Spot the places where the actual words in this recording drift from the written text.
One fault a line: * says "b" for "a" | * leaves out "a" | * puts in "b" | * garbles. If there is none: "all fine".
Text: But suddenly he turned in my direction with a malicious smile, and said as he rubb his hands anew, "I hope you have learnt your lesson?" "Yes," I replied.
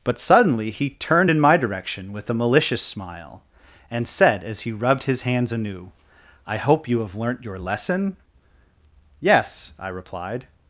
* says "rubbed" for "rubb"